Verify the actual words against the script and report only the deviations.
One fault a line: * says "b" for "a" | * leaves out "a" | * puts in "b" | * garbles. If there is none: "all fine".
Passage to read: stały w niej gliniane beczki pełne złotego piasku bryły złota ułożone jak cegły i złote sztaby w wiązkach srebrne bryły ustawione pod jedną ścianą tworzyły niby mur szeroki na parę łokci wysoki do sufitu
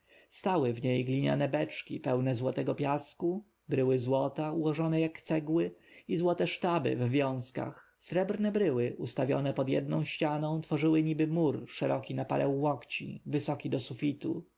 all fine